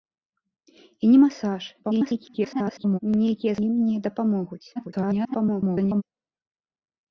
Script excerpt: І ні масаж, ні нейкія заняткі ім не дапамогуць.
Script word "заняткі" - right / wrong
wrong